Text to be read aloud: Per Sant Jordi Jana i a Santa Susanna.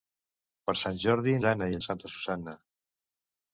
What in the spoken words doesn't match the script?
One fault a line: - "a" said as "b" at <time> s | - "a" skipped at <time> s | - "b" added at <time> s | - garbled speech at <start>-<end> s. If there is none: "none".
none